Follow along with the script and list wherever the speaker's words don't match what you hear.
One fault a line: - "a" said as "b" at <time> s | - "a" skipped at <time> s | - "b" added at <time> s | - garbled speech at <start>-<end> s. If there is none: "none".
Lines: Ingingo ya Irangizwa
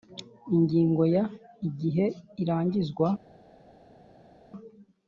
- "Igihe" added at 1.7 s